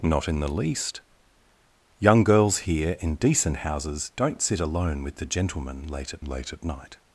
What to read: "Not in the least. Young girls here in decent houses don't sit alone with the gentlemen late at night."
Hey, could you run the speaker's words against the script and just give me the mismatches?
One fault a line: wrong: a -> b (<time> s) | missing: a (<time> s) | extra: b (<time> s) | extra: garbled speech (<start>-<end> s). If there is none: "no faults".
extra: late at (6.2 s)